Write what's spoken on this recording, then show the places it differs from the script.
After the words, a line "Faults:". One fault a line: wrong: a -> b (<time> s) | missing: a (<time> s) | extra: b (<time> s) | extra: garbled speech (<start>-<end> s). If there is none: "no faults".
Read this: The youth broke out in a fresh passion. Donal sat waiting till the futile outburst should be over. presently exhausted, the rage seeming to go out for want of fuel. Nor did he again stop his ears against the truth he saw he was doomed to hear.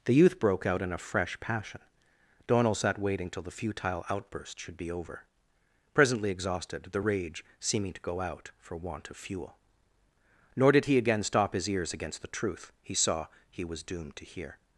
The youth broke out in a fresh passion. Donal sat waiting till the futile outburst should be over. presently exhausted, the rage seeming to go out for want of fuel. Nor did he again stop his ears against the truth he saw he was doomed to hear.
Faults:
no faults